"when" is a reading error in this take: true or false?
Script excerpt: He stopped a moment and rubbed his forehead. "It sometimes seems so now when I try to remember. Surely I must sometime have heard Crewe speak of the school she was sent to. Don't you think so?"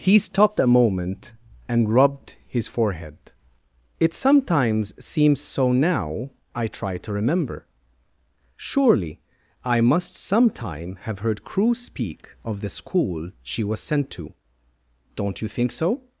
true